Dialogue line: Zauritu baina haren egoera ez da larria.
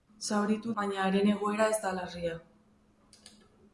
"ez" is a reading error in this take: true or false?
false